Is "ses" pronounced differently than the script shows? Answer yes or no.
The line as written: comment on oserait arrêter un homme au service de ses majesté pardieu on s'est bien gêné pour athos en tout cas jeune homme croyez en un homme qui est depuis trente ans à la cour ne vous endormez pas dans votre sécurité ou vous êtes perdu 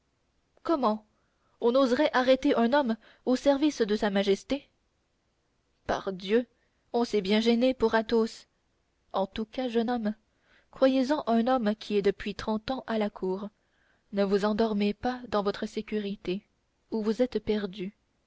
yes